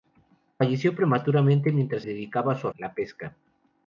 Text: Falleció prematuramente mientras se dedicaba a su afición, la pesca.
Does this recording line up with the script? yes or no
no